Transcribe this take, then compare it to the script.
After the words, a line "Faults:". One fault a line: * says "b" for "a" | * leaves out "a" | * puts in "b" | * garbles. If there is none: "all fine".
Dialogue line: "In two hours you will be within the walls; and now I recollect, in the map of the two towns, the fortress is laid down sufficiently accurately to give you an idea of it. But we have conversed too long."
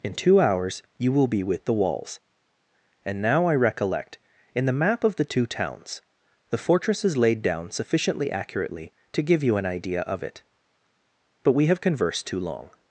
"In two hours you will be with the walls; and now I recollect, in the map of the two towns, the fortress is laid down sufficiently accurately to give you an idea of it. But we have conversed too long."
Faults:
* says "with" for "within"